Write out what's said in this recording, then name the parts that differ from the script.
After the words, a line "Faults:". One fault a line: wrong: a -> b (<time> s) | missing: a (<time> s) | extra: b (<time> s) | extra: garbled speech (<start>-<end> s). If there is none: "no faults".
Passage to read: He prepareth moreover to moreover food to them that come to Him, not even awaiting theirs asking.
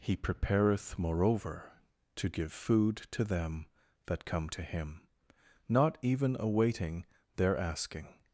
He prepareth moreover to give food to them that come to Him, not even awaiting their asking.
Faults:
wrong: moreover -> give (2.3 s)
wrong: theirs -> their (7.4 s)